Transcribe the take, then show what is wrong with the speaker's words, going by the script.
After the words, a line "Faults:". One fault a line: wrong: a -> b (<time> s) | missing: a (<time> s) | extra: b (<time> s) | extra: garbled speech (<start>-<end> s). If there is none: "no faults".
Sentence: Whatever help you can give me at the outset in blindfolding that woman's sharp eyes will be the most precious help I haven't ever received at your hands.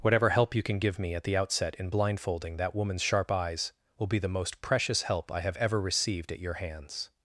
Whatever help you can give me at the outset in blindfolding that woman's sharp eyes will be the most precious help I have ever received at your hands.
Faults:
wrong: haven't -> have (5.4 s)